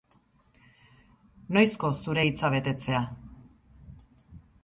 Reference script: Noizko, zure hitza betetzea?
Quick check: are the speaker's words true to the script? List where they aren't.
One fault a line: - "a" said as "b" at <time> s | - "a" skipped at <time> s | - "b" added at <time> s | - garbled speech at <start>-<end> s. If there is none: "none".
none